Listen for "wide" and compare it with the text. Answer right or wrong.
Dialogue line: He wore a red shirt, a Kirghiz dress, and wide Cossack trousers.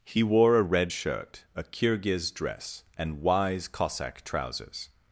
wrong